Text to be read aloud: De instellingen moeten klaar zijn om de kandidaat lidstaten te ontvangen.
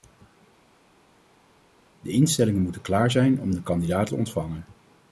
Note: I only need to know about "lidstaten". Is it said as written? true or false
false